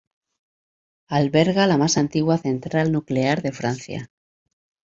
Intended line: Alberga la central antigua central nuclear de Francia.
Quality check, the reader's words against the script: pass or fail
fail